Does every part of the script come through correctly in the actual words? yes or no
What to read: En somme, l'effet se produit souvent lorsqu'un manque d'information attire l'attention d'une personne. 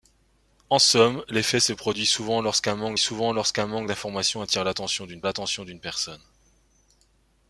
no